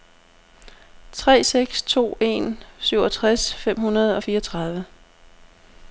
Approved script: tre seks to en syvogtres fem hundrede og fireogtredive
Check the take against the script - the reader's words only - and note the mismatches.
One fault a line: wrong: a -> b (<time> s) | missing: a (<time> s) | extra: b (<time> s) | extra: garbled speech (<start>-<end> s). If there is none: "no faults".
no faults